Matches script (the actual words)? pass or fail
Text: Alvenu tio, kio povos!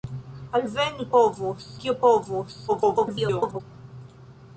fail